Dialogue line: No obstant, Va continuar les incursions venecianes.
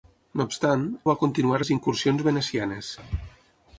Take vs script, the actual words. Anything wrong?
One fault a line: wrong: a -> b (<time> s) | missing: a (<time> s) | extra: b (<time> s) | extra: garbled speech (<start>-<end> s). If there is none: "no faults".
no faults